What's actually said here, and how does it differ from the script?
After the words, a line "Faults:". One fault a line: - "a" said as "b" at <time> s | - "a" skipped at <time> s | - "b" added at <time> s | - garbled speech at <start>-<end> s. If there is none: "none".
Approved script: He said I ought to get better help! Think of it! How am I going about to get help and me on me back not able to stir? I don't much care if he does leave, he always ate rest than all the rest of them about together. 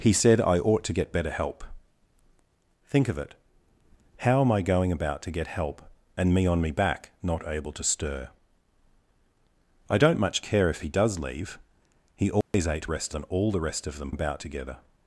He said I ought to get better help! Think of it! How am I going about to get help and me on me back not able to stir? I don't much care if he does leave, he always ate rest than all the rest of them about together.
Faults:
none